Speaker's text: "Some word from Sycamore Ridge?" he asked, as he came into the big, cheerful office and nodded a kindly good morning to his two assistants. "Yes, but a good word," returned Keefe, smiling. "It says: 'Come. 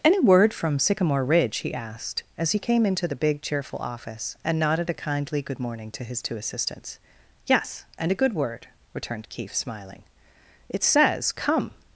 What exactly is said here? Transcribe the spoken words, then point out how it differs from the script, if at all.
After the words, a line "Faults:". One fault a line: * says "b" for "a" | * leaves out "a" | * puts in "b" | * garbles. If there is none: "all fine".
"Any word from Sycamore Ridge?" he asked, as he came into the big, cheerful office and nodded a kindly good morning to his two assistants. "Yes, and a good word," returned Keefe, smiling. "It says: 'Come.
Faults:
* says "Any" for "Some"
* says "and" for "but"